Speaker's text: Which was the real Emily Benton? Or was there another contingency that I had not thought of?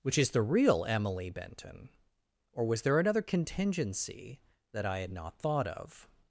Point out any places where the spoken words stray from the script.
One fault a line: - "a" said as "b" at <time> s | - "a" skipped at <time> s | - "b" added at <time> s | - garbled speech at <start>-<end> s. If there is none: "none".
- "was" said as "is" at 0.2 s